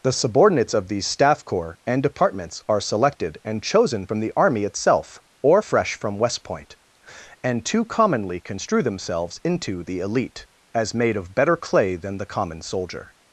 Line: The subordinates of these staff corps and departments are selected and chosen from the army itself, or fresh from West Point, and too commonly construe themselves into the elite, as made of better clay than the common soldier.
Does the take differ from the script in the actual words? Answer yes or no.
no